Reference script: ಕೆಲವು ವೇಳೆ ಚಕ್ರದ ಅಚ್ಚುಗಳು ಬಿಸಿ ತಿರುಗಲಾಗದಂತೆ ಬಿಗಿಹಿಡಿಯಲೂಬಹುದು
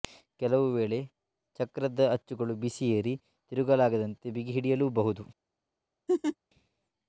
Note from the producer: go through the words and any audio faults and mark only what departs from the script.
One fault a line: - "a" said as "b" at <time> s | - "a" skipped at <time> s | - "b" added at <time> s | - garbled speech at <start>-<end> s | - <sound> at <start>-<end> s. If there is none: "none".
- "ಏರಿ" added at 3.0 s
- laugh at 6.1-6.4 s